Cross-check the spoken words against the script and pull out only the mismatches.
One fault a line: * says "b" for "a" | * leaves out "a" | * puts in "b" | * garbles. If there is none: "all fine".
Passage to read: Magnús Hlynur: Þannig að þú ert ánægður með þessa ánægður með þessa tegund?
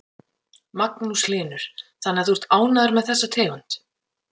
* leaves out "ánægður með þessa"